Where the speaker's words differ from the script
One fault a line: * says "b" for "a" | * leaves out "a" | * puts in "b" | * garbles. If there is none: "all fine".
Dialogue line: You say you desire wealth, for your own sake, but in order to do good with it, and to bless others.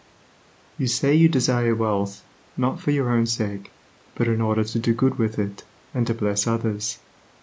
* puts in "not"